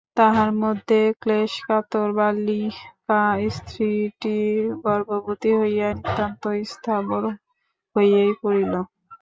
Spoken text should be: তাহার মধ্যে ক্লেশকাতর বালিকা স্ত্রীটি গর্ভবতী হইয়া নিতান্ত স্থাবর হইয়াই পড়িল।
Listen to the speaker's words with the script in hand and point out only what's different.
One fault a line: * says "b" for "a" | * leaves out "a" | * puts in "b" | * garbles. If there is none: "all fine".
all fine